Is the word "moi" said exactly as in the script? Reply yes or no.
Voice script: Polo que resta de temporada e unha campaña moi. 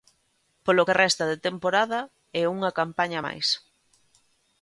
no